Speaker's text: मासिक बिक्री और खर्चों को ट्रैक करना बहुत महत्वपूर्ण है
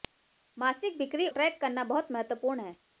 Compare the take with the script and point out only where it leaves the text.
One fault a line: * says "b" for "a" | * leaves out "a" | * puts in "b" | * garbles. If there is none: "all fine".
* leaves out "और खर्चों को"